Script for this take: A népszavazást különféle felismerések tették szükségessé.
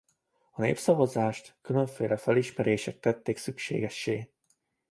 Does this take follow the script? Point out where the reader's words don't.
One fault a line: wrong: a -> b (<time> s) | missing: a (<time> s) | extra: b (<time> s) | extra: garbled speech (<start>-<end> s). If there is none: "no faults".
no faults